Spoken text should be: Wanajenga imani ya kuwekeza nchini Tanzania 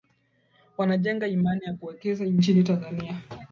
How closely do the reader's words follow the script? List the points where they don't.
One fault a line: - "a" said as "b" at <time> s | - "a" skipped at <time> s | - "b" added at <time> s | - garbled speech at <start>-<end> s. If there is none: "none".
none